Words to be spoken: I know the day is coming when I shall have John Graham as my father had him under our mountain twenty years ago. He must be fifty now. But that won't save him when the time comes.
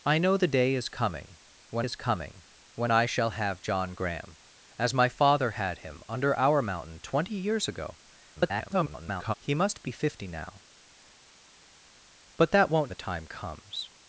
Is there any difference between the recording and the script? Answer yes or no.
yes